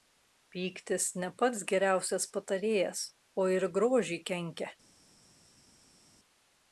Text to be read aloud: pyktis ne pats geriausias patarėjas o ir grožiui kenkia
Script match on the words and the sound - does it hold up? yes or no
yes